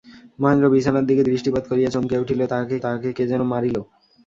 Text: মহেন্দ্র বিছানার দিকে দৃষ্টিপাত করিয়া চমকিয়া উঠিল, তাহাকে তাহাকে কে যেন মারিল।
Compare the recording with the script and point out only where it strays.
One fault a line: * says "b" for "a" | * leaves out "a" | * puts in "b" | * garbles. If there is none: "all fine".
all fine